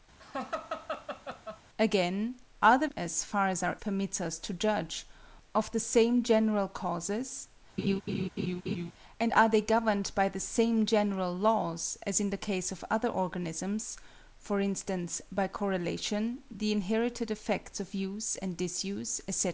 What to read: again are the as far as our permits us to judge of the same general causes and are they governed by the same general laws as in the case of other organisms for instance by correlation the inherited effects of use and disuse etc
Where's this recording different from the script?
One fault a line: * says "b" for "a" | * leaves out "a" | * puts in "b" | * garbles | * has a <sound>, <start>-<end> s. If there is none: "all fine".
* has a laugh, 0.2-1.6 s
* has a laugh, 7.8-8.9 s